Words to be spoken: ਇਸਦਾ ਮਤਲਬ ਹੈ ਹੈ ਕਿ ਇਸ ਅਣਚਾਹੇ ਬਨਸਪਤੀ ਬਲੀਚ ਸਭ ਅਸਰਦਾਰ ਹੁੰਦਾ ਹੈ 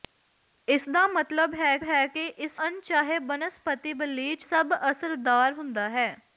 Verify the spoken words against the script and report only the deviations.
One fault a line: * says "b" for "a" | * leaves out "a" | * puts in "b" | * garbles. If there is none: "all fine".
all fine